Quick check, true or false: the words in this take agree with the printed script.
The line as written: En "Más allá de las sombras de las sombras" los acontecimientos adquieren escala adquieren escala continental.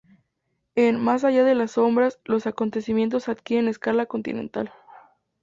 false